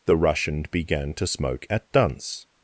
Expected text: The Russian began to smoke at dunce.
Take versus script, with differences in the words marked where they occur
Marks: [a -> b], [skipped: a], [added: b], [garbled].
The Russian began to smoke at dunce.